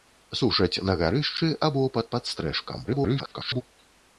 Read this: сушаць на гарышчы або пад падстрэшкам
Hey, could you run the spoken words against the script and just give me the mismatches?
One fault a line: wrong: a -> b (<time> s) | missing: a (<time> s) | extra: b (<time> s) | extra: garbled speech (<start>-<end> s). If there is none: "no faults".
extra: garbled speech (2.9-3.6 s)